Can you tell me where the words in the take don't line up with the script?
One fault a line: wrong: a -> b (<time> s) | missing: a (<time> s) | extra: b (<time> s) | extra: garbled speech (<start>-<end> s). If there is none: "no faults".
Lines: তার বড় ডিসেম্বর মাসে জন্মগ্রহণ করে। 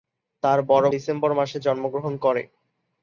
no faults